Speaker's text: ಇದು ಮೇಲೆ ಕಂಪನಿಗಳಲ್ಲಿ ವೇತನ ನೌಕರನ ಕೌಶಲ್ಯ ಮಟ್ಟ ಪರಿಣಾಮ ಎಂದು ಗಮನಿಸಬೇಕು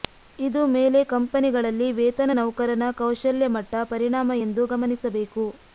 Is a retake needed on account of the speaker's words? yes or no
no